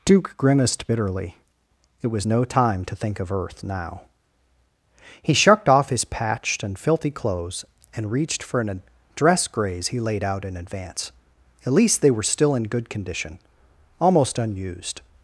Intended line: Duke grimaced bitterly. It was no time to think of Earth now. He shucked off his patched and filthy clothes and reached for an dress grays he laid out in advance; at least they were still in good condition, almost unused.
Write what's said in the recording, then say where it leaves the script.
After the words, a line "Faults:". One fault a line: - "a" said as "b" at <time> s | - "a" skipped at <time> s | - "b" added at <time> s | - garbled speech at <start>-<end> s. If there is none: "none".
Duke grimaced bitterly. It was no time to think of Earth now. He shucked off his patched and filthy clothes and reached for an dress grays he laid out in advance; at least they were still in good condition, almost unused.
Faults:
none